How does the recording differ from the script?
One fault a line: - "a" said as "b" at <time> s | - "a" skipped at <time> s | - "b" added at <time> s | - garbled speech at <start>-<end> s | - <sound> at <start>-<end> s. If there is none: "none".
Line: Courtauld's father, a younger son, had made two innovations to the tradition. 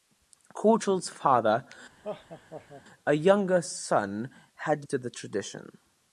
- laugh at 2.0-2.8 s
- "made two innovations" skipped at 4.9 s